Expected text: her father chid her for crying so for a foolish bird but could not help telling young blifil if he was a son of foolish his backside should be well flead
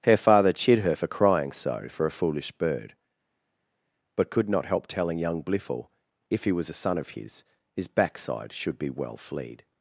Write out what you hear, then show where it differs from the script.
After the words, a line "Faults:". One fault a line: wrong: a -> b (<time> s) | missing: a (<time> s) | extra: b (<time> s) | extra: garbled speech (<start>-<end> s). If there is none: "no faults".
her father chid her for crying so for a foolish bird but could not help telling young blifil if he was a son of his his backside should be well flead
Faults:
wrong: foolish -> his (7.1 s)